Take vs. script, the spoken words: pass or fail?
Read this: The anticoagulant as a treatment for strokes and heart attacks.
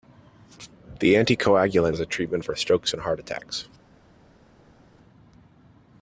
pass